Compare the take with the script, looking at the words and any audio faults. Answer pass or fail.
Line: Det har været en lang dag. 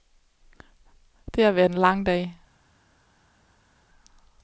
pass